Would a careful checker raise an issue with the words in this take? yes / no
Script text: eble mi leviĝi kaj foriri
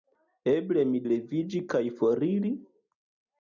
no